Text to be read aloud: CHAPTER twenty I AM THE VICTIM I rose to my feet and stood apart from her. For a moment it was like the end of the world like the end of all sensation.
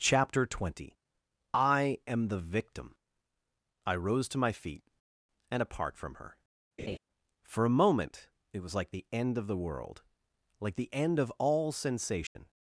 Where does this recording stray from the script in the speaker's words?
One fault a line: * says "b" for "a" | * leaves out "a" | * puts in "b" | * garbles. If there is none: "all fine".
* leaves out "stood"